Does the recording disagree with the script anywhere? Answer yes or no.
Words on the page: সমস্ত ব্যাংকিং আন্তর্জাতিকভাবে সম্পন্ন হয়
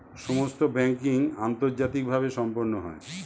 no